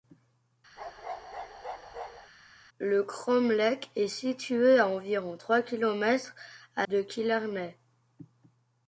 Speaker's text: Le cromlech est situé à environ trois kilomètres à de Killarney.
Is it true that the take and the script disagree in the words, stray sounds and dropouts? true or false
true